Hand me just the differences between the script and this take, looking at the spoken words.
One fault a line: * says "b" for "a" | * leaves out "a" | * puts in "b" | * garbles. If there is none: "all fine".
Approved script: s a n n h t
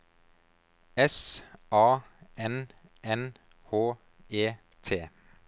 * puts in "e"